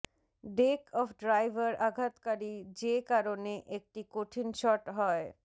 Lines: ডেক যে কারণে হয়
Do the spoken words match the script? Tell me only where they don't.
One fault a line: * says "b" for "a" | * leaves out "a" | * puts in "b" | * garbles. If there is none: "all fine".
* puts in "অফ ড্রাইভার আঘাতকারী"
* puts in "একটি কঠিন শট"